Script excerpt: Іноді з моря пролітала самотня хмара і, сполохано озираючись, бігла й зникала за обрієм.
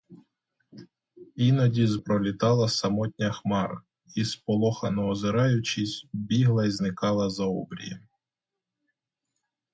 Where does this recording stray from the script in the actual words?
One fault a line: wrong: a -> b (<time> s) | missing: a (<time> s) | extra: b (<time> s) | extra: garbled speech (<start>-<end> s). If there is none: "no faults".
missing: моря (1.9 s)